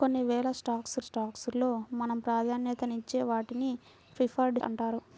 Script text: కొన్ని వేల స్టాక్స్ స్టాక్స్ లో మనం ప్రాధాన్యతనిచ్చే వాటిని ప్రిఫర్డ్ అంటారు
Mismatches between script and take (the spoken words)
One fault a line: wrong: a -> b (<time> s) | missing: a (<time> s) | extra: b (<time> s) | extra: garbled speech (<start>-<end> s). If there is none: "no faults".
no faults